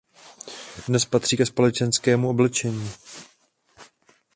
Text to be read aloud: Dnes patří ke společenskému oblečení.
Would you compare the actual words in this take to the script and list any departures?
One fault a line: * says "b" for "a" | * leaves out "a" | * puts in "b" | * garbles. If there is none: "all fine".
all fine